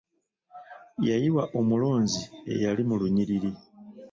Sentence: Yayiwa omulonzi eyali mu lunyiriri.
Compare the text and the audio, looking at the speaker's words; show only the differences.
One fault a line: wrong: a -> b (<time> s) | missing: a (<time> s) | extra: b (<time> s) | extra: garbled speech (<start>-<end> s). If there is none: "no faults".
no faults